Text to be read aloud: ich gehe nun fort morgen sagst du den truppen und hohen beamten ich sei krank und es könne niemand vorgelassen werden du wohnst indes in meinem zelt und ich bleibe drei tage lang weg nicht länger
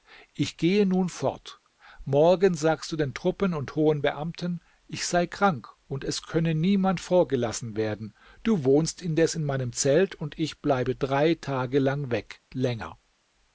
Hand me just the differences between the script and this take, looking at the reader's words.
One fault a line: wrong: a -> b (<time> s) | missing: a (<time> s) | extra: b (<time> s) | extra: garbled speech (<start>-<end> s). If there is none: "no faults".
missing: nicht (12.4 s)